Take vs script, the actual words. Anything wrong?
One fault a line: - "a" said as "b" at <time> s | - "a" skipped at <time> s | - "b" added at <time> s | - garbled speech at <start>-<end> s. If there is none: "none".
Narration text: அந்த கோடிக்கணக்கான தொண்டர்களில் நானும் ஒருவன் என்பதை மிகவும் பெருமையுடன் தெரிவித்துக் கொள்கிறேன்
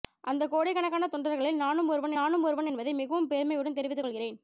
- "நானும் ஒருவன்" added at 2.2 s